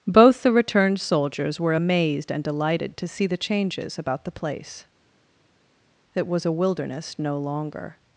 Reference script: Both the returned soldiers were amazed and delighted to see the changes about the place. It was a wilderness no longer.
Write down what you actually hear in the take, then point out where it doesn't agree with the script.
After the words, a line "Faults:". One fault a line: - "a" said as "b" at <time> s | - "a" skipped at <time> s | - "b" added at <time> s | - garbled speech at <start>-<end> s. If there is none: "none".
Both the returned soldiers were amazed and delighted to see the changes about the place. It was a wilderness no longer.
Faults:
none